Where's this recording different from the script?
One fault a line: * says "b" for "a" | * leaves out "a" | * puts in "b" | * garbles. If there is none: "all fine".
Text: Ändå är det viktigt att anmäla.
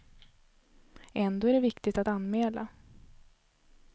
all fine